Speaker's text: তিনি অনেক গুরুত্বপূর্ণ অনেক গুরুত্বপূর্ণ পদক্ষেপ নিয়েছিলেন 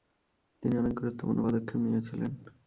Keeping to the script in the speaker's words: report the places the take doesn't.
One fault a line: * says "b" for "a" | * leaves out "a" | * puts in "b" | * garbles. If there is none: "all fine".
* leaves out "অনেক গুরুত্বপূর্ণ"